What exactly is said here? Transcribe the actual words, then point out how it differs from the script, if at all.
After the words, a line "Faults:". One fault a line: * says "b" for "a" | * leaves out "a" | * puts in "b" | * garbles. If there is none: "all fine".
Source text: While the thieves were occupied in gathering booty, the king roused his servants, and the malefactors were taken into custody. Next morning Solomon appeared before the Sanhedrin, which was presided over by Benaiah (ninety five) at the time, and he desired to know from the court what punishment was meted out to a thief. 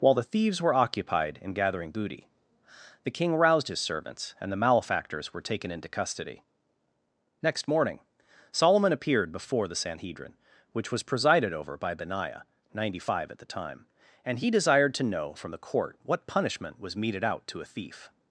While the thieves were occupied in gathering booty, the king roused his servants, and the malefactors were taken into custody. Next morning Solomon appeared before the Sanhedrin, which was presided over by Benaiah (ninety five) at the time, and he desired to know from the court what punishment was meted out to a thief.
Faults:
all fine